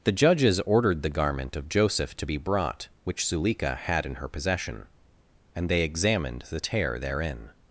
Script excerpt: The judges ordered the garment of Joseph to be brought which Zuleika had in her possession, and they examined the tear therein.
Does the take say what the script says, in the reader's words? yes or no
yes